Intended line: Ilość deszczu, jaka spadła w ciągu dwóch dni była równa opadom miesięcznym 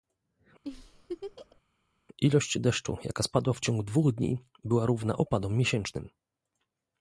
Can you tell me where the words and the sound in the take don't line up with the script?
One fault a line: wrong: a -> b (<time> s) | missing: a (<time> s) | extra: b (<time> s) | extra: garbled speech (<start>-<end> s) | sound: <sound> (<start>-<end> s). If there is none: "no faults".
sound: laugh (0.6-1.6 s)